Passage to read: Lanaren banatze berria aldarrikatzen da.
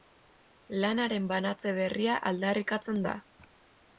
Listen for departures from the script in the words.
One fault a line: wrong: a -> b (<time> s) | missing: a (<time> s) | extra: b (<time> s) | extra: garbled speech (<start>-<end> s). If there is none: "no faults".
no faults